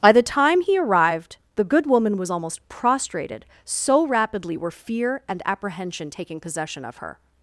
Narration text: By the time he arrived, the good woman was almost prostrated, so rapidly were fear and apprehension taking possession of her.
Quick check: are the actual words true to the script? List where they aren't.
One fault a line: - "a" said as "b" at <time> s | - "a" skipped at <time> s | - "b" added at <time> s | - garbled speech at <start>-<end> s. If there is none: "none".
none